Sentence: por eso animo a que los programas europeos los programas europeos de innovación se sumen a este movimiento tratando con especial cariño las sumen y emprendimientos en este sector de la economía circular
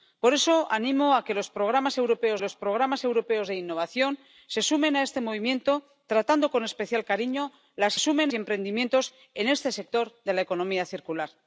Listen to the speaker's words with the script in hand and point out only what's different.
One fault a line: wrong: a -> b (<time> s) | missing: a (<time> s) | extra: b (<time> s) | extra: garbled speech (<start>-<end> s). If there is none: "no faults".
no faults